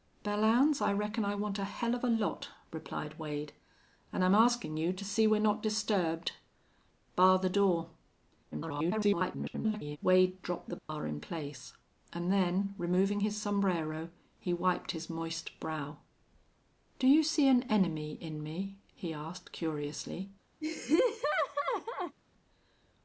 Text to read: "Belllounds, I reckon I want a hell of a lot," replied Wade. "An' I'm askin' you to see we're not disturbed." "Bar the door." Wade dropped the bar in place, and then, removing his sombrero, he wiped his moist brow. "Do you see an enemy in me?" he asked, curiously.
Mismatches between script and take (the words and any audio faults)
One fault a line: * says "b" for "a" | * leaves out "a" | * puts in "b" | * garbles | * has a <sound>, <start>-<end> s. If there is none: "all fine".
* garbles
* has a dropout, 10.8-10.9 s
* has a laugh, 20.6-22.2 s